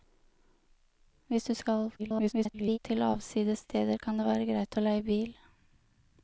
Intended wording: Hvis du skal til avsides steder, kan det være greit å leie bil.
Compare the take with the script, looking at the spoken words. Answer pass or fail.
fail